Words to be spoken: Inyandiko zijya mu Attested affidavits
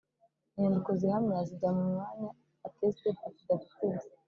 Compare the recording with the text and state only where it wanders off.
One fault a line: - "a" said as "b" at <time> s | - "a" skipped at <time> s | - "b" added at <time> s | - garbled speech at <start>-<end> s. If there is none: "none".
- "zihamya" added at 1.0 s
- "mwanya" added at 1.9 s